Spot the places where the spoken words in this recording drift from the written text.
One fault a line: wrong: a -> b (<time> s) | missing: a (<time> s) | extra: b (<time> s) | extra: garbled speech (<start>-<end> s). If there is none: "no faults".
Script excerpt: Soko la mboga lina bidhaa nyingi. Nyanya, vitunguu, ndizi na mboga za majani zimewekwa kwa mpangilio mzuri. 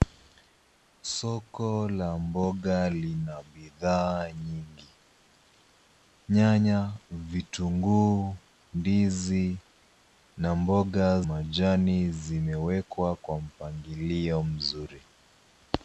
missing: za (11.2 s)